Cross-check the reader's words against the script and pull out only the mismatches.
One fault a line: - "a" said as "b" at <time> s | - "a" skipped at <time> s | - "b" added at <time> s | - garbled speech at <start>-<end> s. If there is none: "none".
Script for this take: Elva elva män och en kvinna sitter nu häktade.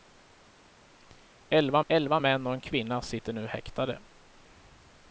none